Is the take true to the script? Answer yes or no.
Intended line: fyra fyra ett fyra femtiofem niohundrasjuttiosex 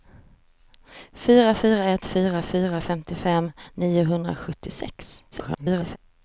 no